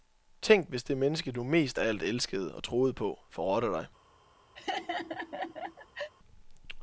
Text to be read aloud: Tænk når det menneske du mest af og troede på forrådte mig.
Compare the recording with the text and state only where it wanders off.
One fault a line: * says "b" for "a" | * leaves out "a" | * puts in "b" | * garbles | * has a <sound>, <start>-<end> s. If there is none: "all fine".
* says "hvis" for "når"
* puts in "alt elskede"
* says "dig" for "mig"
* has a laugh, 4.6-6.1 s